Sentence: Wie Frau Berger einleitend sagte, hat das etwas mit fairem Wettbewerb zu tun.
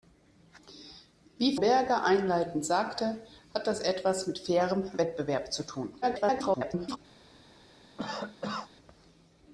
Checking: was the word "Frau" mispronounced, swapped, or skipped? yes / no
yes